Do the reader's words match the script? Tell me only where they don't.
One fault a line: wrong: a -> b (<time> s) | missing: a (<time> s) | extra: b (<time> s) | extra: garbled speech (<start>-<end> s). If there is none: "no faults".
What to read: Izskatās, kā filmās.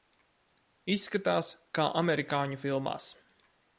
extra: amerikāņu (2.0 s)